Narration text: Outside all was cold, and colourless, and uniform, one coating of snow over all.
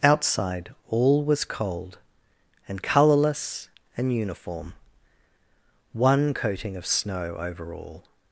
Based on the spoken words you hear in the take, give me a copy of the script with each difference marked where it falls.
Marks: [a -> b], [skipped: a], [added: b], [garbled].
Outside all was cold, and colourless, and uniform, one coating of snow over all.